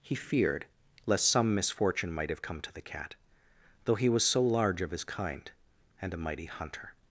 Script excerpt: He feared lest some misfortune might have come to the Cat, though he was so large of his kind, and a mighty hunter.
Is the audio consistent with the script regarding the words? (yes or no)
yes